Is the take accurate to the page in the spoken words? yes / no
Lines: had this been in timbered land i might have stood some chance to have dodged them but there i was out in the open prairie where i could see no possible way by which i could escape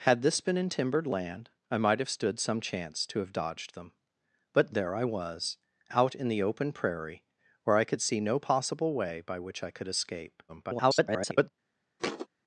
no